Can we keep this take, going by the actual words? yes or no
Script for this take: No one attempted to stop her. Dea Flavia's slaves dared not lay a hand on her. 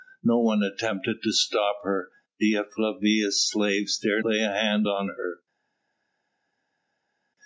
no